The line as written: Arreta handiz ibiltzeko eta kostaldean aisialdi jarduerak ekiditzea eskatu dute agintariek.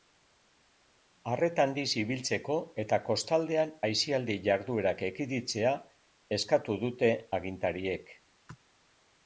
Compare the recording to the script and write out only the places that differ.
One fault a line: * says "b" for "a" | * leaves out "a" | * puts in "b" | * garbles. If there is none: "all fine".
all fine